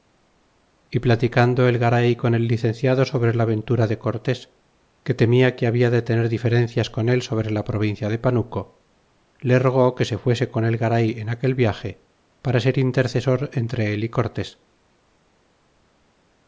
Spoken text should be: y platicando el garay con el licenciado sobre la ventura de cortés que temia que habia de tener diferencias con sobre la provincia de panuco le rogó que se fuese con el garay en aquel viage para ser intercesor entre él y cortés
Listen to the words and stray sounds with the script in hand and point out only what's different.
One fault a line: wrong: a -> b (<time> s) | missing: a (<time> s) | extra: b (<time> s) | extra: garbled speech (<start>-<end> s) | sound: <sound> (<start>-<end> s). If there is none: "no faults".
extra: él (7.1 s)